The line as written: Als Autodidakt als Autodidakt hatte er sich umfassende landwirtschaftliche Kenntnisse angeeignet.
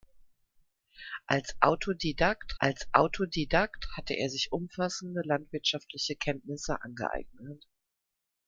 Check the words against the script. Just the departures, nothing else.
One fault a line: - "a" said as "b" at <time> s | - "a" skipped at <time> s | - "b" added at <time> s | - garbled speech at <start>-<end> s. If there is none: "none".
none